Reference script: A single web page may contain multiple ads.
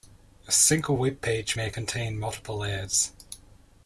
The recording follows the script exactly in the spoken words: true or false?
true